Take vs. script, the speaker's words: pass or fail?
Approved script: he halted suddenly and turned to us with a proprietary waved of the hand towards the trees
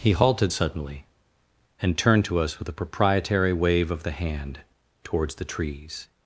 fail